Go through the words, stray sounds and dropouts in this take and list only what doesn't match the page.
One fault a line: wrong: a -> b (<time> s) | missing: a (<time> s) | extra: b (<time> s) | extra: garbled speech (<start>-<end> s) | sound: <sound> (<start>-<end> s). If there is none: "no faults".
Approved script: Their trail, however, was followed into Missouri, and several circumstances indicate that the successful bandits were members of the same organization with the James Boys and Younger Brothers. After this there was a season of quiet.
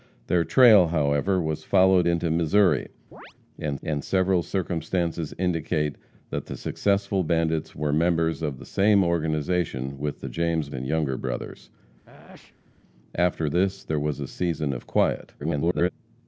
sound: chirp (3.1-3.3 s)
extra: and (3.8 s)
missing: Boys (10.7 s)
sound: sneeze (12.0-12.8 s)
extra: garbled speech (15.4-15.9 s)